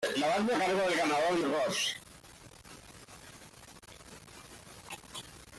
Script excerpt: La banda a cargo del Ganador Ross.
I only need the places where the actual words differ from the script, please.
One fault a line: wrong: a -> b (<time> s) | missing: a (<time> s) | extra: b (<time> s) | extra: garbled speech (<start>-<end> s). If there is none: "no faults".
no faults